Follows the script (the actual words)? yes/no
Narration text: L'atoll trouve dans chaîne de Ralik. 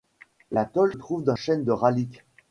yes